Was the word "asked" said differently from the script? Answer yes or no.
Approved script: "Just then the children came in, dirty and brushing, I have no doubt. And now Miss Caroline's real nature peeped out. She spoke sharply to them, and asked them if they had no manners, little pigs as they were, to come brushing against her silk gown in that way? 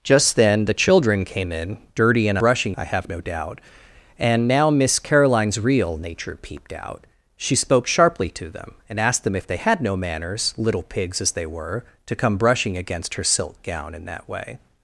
no